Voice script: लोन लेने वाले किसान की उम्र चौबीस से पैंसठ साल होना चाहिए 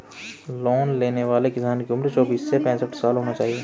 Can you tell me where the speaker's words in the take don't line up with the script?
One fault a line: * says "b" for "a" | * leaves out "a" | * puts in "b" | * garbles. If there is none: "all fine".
all fine